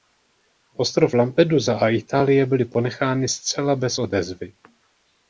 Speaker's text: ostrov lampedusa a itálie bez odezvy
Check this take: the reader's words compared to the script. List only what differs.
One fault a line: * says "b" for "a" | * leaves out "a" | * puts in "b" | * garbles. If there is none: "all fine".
* puts in "byly ponechány zcela"